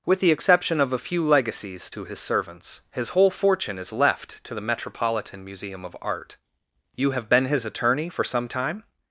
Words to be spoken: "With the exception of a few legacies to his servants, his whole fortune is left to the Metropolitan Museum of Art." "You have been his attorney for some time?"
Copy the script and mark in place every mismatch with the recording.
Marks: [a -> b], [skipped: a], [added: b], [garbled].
"With the exception of a few legacies to his servants, his whole fortune is left to the Metropolitan Museum of Art." "You have been his attorney for some time?"